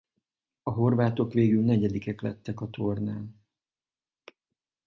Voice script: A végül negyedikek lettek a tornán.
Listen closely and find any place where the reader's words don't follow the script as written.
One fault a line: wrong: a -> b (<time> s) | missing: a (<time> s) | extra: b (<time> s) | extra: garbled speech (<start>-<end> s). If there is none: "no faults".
extra: horvátok (0.7 s)